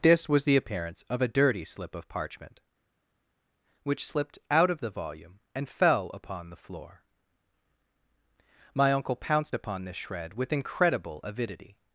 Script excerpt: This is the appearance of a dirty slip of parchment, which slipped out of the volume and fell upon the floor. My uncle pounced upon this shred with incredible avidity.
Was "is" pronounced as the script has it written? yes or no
no